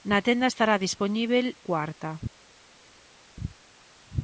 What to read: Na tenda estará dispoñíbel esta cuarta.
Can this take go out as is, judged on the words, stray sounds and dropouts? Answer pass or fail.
fail